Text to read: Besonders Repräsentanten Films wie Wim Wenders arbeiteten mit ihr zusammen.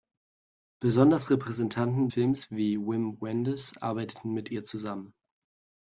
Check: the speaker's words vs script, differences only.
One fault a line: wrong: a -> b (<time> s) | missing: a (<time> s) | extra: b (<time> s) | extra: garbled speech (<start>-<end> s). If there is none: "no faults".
no faults